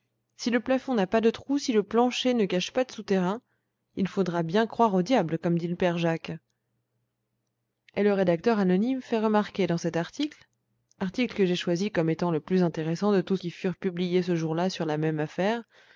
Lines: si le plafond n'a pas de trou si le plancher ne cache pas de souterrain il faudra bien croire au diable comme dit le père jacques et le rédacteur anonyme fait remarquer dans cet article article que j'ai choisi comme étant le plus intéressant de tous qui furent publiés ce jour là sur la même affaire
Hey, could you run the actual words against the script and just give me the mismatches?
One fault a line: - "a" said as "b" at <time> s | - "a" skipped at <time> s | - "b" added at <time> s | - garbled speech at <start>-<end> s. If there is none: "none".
none